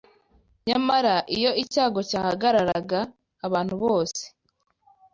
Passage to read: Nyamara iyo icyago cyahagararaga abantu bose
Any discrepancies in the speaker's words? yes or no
no